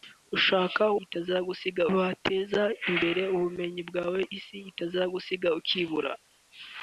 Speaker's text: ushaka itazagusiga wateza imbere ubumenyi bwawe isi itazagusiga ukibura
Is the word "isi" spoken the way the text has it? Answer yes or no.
yes